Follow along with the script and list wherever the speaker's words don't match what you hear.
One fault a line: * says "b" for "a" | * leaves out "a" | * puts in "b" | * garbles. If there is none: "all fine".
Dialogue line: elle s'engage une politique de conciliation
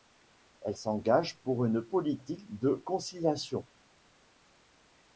* puts in "pour"